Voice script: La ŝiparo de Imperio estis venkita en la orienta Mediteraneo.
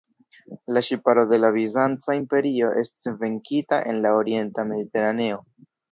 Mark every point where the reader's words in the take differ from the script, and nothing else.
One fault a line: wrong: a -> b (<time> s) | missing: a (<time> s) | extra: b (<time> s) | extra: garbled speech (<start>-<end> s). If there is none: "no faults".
extra: la Bizanca (1.4 s)